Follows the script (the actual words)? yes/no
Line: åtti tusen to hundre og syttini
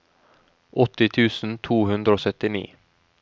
yes